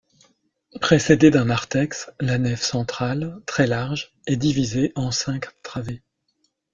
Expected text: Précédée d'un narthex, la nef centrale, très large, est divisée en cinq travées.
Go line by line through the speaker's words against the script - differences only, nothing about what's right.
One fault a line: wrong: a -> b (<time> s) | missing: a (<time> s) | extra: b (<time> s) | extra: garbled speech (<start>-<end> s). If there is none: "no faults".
no faults